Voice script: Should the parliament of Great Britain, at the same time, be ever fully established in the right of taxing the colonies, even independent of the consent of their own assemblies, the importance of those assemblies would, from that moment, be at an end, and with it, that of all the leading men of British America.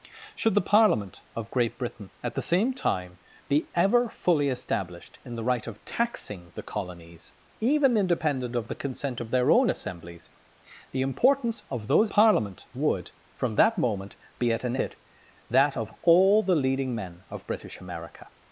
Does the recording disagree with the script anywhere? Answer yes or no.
yes